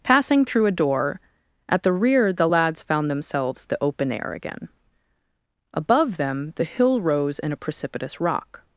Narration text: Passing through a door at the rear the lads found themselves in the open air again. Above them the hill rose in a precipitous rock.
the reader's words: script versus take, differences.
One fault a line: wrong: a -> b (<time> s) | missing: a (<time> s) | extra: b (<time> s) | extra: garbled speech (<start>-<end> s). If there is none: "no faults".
missing: in (3.6 s)